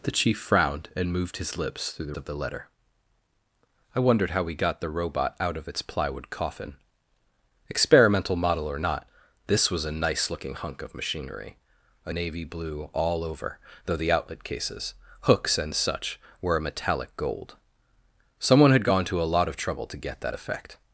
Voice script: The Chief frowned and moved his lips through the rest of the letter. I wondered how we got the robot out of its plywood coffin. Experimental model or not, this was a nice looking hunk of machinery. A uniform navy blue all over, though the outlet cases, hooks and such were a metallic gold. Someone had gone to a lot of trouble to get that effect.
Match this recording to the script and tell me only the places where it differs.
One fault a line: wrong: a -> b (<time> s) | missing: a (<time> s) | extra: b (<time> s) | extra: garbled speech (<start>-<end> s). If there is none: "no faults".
missing: rest (2.1 s)
missing: uniform (12.1 s)